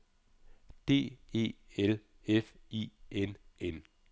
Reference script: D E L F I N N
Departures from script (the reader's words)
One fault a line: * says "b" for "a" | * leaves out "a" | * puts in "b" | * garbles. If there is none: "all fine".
all fine